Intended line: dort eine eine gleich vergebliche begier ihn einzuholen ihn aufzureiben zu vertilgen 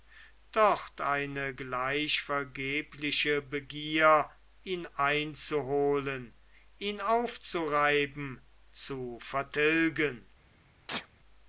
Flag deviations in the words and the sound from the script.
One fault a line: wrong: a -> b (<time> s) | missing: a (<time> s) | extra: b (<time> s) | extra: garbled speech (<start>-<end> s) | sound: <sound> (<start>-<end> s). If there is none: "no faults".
missing: eine (1.5 s)
sound: sneeze (10.9-11.1 s)